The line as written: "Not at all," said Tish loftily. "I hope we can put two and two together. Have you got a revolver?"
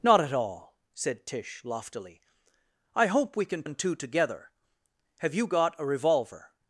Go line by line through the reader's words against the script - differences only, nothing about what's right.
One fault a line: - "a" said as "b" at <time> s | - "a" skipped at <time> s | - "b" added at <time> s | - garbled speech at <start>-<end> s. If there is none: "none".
- "put two" skipped at 3.6 s